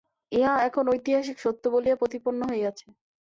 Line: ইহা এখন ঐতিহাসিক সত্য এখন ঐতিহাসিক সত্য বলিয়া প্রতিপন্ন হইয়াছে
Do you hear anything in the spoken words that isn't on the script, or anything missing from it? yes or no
yes